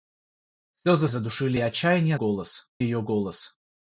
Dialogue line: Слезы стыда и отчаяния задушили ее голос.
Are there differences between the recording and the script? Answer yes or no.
yes